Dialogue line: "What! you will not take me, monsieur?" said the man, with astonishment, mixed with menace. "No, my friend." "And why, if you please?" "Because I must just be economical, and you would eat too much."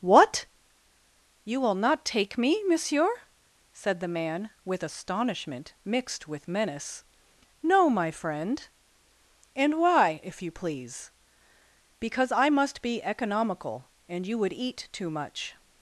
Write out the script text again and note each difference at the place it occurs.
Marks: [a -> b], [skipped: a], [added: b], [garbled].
"What! you will not take me, monsieur?" said the man, with astonishment, mixed with menace. "No, my friend." "And why, if you please?" "Because I must [skipped: just] be economical, and you would eat too much."